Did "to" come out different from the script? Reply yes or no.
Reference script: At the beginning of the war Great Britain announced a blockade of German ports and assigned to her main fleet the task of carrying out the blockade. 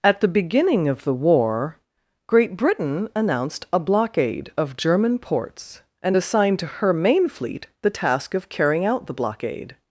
no